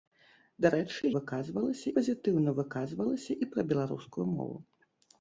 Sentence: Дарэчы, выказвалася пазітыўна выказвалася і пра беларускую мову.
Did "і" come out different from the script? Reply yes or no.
no